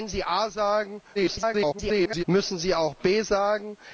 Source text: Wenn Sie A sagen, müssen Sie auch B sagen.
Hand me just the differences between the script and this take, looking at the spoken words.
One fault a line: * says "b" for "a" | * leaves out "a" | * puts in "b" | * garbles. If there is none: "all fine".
* garbles